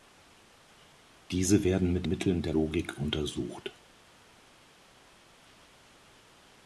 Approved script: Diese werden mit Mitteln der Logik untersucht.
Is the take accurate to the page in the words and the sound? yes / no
yes